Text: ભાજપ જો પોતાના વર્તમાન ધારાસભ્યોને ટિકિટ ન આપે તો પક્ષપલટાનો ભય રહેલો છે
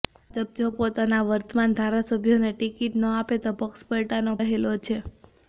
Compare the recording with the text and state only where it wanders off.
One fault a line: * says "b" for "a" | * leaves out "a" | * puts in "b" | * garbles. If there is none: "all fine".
* leaves out "ભય"